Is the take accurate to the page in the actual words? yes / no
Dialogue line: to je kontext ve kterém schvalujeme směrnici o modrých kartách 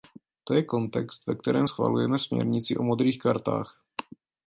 yes